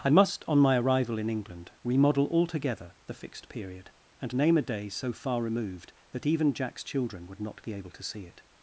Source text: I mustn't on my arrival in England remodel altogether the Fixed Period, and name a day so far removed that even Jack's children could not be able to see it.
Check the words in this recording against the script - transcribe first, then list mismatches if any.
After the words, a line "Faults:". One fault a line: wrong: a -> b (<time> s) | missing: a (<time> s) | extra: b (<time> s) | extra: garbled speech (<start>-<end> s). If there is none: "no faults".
I must on my arrival in England remodel altogether the Fixed Period, and name a day so far removed that even Jack's children would not be able to see it.
Faults:
wrong: mustn't -> must (0.1 s)
wrong: could -> would (7.3 s)